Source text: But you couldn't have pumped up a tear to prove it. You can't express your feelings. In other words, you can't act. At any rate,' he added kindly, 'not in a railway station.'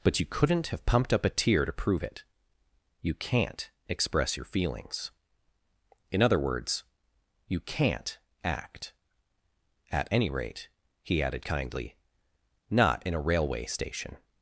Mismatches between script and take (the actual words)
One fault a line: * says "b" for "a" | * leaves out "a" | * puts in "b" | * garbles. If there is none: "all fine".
all fine